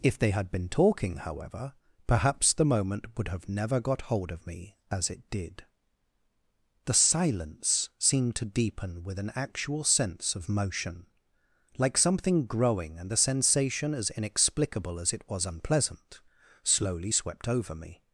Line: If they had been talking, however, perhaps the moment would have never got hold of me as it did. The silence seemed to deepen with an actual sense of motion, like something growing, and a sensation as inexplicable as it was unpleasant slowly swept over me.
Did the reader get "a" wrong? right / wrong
wrong